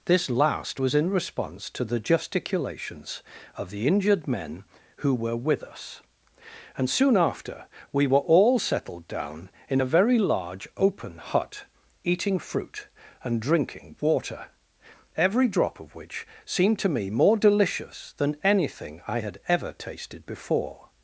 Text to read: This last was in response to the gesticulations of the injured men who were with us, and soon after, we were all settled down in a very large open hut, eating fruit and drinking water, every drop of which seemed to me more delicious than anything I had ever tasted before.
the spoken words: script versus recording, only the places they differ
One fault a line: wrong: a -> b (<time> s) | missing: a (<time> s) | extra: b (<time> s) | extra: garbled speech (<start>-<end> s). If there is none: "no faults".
no faults